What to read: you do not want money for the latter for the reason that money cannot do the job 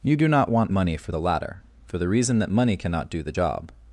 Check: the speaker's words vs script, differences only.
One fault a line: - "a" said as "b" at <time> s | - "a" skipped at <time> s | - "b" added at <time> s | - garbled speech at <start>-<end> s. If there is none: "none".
none